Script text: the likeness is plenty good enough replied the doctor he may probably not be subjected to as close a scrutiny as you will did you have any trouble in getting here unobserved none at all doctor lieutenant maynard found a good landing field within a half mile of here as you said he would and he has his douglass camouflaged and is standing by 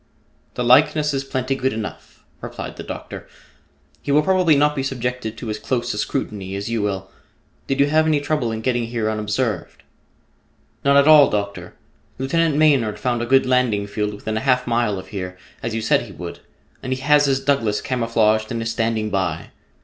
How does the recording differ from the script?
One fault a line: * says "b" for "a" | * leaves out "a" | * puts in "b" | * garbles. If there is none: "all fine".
* says "will" for "may"